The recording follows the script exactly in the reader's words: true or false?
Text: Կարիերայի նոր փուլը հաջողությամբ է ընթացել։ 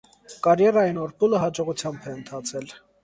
true